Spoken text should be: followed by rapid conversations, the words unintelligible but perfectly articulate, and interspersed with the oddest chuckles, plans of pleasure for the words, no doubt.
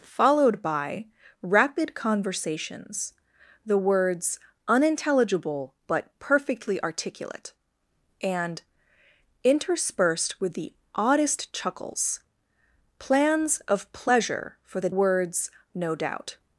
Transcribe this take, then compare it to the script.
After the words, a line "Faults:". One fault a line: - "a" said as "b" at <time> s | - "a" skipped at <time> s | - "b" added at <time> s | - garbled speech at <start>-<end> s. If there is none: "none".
followed by rapid conversations, the words unintelligible but perfectly articulate, and interspersed with the oddest chuckles, plans of pleasure for the words, no doubt.
Faults:
none